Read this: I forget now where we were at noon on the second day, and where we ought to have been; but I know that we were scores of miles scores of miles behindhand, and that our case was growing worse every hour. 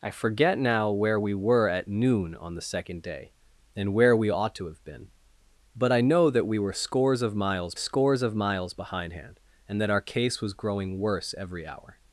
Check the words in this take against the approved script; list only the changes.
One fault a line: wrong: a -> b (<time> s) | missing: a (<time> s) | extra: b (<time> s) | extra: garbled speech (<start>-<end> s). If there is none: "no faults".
no faults